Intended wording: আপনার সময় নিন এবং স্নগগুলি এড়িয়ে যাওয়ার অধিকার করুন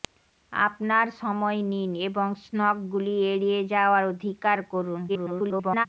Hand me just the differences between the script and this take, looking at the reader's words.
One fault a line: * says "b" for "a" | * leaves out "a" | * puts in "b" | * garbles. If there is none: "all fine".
* garbles